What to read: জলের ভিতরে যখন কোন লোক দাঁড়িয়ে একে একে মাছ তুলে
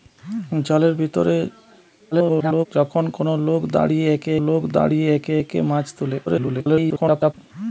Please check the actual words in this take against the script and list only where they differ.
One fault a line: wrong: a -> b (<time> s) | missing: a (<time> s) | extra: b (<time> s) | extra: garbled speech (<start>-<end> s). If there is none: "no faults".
extra: garbled speech (2.1-2.7 s)
extra: লোক দাঁড়িয়ে একে (4.5 s)
extra: garbled speech (6.3-7.3 s)